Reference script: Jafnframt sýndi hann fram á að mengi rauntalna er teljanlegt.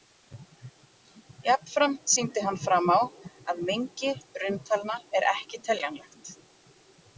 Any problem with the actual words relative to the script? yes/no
yes